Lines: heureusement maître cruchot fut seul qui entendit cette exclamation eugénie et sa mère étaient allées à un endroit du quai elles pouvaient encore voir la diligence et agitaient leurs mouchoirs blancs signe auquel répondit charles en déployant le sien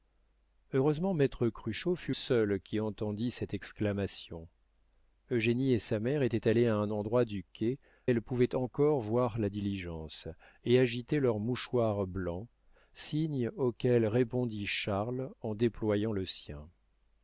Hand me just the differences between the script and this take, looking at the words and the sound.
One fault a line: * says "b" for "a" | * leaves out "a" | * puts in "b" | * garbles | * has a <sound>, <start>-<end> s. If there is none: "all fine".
all fine